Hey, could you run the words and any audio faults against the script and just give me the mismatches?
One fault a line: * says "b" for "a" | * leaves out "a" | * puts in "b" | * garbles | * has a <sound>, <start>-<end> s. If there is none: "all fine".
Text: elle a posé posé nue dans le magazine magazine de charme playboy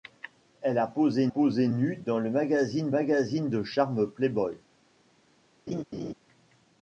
* has a laugh, 5.7-6.1 s